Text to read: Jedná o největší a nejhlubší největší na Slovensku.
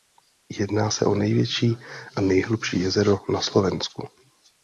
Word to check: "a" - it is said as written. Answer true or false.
true